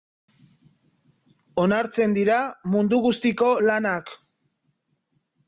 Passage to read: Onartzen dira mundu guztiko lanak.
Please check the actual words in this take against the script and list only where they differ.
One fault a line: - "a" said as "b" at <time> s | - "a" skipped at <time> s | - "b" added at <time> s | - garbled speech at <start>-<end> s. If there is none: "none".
none